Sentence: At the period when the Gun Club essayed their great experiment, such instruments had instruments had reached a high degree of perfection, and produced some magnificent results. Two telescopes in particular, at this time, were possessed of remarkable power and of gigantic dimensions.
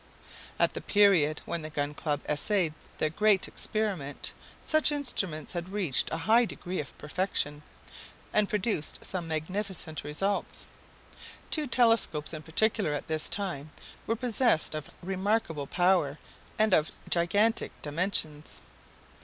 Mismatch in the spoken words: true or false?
true